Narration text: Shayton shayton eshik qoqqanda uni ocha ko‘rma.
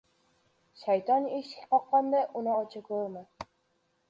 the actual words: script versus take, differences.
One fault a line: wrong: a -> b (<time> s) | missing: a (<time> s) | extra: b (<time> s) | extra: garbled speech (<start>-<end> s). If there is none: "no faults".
missing: shayton (1.3 s)